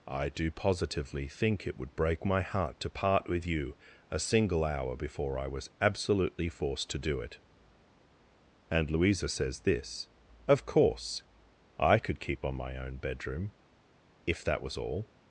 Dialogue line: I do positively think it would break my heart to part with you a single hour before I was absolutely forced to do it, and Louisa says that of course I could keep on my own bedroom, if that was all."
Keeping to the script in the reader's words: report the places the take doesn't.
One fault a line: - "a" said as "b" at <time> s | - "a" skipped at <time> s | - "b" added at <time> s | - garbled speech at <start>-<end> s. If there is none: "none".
- "that" said as "this" at 9.6 s